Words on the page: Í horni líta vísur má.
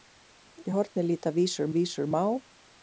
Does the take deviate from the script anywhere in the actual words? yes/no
yes